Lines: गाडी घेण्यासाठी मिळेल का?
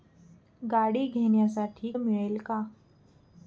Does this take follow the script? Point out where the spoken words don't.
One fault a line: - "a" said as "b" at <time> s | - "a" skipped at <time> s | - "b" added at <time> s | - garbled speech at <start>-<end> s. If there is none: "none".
none